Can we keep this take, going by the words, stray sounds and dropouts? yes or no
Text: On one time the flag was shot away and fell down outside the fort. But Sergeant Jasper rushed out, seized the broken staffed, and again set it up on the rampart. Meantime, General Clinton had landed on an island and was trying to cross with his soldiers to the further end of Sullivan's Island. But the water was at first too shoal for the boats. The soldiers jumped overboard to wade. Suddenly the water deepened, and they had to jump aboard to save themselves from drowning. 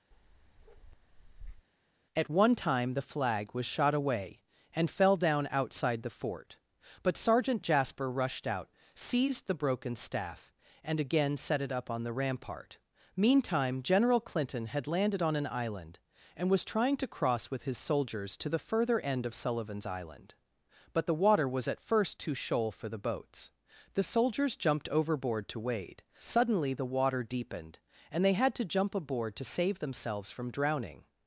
no